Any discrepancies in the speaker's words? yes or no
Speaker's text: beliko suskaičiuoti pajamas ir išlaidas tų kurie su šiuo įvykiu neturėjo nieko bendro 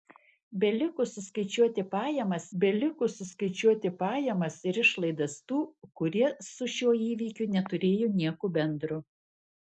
yes